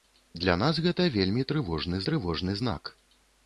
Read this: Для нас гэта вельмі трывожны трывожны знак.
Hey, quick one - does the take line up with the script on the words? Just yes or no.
yes